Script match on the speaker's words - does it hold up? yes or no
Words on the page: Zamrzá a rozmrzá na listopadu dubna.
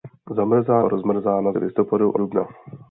yes